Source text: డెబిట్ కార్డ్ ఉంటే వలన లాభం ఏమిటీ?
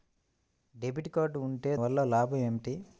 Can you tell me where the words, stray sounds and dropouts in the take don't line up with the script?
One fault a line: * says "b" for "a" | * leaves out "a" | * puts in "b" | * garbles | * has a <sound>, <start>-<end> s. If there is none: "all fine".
all fine